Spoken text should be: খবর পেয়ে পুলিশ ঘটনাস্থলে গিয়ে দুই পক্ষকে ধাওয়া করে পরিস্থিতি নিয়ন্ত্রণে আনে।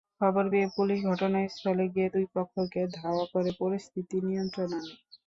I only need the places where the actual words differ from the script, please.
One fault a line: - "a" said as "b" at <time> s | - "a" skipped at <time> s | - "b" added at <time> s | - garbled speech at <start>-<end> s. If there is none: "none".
none